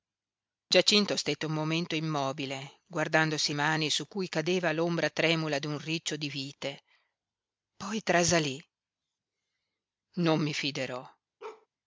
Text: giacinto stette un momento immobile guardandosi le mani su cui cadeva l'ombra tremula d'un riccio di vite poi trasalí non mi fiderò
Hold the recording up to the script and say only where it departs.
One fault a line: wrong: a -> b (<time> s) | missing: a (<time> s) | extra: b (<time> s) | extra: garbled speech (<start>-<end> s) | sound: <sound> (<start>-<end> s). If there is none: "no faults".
missing: le (3.5 s)
sound: bark (11.4-11.7 s)